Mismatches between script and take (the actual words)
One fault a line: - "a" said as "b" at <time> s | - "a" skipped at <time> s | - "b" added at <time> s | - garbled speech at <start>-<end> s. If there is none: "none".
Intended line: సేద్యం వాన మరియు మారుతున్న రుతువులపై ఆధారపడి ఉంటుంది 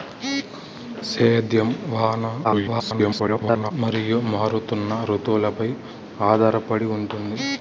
- garbled speech at 2.4-3.7 s